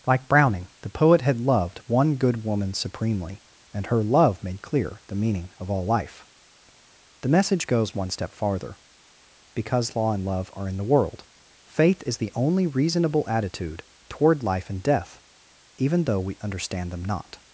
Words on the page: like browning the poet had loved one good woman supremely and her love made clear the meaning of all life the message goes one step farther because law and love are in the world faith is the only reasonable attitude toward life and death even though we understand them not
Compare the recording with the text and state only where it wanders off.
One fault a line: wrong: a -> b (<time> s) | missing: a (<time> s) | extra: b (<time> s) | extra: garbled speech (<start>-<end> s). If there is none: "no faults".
no faults